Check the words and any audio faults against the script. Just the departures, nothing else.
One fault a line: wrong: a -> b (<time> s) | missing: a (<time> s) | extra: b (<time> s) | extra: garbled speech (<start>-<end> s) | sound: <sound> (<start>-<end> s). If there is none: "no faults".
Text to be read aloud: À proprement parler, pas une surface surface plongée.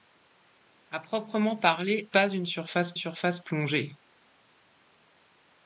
no faults